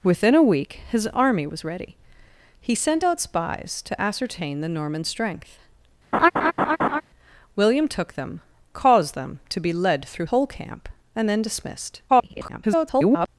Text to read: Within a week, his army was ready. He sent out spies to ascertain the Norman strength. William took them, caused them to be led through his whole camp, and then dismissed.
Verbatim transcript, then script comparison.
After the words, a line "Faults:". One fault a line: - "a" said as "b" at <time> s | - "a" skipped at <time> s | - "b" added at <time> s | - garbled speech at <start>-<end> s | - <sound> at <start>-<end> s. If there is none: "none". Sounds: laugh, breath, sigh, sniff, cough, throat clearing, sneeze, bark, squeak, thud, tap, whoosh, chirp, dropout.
Within a week, his army was ready. He sent out spies to ascertain the Norman strength. William took them, caused them to be led through whole camp, and then dismissed. [garbled]
Faults:
- laugh at 6.1-7.0 s
- "his" skipped at 10.3 s
- garbled speech at 12.1-13.3 s